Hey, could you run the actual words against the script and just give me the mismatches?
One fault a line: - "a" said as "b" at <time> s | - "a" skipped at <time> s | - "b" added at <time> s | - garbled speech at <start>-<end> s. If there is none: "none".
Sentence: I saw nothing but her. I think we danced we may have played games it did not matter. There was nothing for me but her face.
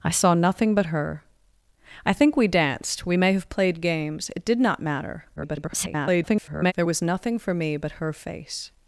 - garbled speech at 5.4-6.7 s